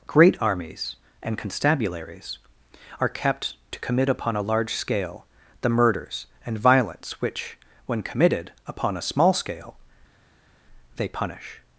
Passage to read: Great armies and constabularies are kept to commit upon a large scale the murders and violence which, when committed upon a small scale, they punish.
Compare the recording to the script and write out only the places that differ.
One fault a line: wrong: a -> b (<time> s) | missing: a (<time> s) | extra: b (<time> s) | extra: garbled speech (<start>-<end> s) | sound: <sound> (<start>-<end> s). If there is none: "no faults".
no faults